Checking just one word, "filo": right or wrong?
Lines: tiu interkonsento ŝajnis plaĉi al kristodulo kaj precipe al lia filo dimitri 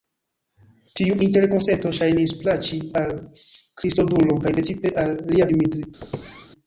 wrong